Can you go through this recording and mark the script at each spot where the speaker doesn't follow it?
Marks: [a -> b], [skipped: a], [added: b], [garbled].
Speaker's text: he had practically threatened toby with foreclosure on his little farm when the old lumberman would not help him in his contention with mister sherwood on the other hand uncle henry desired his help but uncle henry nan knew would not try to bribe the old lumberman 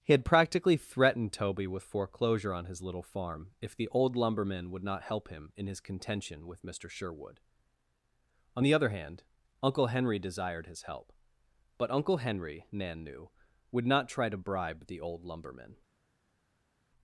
he had practically threatened toby with foreclosure on his little farm [when -> if] the old lumberman would not help him in his contention with mister sherwood on the other hand uncle henry desired his help but uncle henry nan knew would not try to bribe the old lumberman